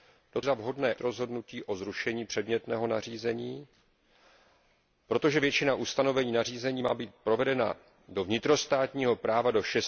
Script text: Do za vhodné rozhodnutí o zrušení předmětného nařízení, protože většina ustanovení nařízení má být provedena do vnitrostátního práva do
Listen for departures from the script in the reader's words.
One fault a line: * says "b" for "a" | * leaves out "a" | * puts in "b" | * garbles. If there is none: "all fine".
all fine